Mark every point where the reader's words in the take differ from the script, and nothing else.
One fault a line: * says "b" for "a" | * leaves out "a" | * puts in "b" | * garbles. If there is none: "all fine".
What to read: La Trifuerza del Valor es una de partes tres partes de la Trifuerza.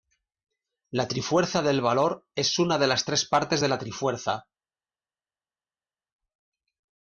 * says "las" for "partes"